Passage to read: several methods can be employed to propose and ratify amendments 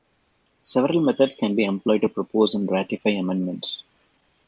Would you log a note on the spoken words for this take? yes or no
no